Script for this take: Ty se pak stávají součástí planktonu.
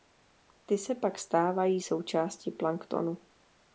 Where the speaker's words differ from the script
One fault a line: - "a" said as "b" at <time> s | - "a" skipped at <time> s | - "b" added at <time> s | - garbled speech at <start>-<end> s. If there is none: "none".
none